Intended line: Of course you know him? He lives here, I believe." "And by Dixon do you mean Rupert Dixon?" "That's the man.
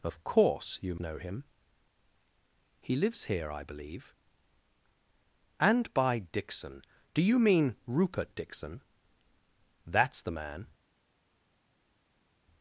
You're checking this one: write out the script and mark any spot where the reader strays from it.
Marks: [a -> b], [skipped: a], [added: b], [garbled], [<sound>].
Of course you know him? He lives here, I believe." "And by Dixon do you mean Rupert Dixon?" "That's the man.